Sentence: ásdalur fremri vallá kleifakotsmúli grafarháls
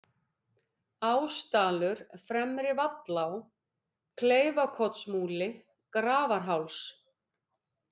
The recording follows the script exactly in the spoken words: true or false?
true